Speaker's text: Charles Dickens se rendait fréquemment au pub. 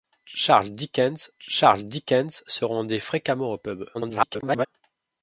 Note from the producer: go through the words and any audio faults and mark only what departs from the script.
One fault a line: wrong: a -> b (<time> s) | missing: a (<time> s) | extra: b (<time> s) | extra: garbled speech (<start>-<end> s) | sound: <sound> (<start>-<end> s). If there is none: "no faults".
extra: charles Dickens (1.4 s)
extra: garbled speech (3.9-4.7 s)